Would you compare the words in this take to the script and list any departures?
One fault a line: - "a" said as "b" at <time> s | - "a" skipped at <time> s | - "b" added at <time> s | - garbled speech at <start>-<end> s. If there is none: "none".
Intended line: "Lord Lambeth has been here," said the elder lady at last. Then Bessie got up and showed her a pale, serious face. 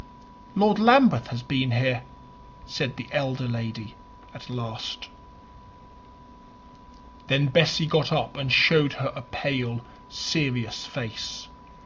none